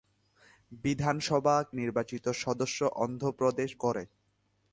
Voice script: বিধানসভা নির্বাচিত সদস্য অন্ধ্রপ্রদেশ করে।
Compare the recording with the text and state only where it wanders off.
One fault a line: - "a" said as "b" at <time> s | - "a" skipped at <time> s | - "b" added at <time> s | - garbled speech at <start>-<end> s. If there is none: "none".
none